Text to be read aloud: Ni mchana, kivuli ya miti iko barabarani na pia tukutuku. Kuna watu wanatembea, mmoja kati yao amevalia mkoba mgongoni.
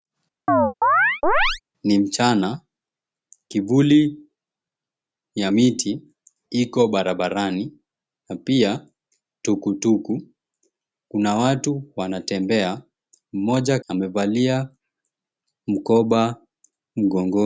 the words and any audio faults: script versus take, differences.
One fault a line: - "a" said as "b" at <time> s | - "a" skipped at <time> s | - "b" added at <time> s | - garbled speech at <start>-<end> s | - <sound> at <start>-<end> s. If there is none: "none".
- chirp at 0.5-1.6 s
- "kati yao" skipped at 13.8 s